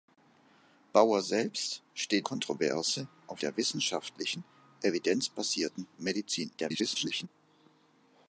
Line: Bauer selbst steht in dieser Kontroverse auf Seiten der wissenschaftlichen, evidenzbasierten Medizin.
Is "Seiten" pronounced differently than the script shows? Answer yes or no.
yes